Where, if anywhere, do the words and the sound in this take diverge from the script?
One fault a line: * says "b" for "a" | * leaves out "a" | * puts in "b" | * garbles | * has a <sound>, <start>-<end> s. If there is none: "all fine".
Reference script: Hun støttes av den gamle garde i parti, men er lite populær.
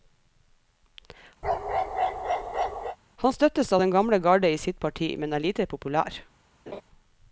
* has a bark, 1.4-3.0 s
* says "Han" for "Hun"
* puts in "sitt"
* has a laugh, 6.7-6.8 s